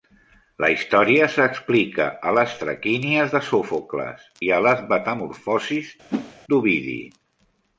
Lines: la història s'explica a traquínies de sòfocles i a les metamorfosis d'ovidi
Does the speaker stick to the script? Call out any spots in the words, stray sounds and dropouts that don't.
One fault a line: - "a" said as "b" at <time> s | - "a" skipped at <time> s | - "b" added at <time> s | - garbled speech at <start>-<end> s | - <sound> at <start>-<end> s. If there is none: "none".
- "les" added at 2.4 s
- whoosh at 6.1-6.4 s